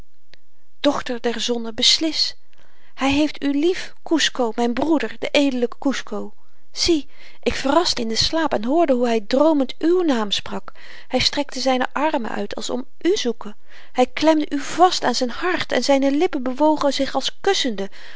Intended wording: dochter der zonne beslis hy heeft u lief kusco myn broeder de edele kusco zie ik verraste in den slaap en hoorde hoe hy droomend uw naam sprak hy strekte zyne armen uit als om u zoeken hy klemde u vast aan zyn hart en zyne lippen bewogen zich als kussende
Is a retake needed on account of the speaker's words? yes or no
no